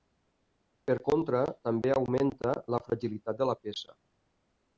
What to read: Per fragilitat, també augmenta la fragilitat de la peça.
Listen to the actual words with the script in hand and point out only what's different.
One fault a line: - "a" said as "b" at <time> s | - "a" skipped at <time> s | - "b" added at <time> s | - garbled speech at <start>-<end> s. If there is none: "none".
- "fragilitat" said as "contra" at 1.1 s